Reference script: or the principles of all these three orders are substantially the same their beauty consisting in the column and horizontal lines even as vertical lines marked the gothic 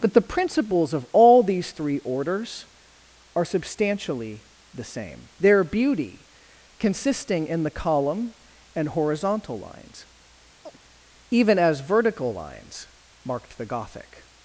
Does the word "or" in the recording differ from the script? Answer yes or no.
yes